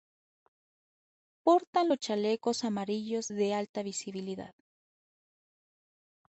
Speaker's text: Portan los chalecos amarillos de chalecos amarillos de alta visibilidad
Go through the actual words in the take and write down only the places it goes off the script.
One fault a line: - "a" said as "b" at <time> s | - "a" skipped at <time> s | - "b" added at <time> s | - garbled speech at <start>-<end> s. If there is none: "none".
- "chalecos amarillos de" skipped at 3.5 s